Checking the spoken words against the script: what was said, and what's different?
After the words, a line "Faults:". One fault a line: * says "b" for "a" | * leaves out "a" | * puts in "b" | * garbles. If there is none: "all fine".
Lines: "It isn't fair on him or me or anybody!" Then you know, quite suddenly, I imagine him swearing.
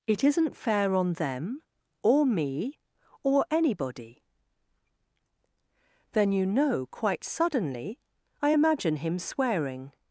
"It isn't fair on them or me or anybody!" Then you know, quite suddenly, I imagine him swearing.
Faults:
* says "them" for "him"